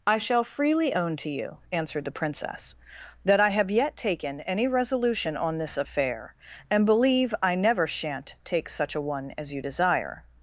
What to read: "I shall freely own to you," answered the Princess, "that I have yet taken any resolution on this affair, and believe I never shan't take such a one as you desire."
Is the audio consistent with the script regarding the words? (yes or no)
yes